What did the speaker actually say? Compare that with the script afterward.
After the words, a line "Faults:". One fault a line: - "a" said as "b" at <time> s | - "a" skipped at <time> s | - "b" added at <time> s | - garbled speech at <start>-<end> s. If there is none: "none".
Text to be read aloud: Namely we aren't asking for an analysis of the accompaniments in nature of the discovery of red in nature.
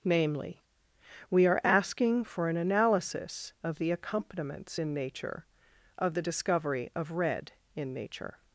Namely we are asking for an analysis of the accompaniments in nature of the discovery of red in nature.
Faults:
- "aren't" said as "are" at 1.4 s